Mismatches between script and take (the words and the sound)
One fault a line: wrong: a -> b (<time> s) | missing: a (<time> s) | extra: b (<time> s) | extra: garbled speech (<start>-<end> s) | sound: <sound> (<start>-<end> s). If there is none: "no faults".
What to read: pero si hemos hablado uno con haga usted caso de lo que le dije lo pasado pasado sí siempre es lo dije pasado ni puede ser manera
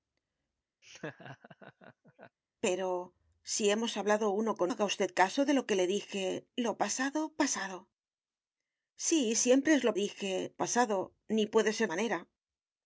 sound: laugh (0.8-2.4 s)